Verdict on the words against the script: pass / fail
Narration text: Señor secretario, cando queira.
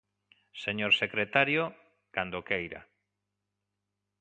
pass